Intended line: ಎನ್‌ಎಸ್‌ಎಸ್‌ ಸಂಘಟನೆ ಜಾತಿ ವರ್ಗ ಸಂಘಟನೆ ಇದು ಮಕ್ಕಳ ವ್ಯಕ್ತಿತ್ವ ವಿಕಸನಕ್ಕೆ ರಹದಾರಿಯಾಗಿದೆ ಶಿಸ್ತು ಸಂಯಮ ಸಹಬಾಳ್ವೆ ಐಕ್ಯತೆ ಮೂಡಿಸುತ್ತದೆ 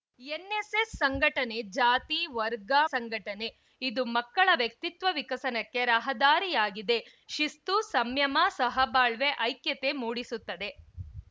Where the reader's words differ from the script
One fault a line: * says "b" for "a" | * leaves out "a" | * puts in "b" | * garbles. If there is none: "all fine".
all fine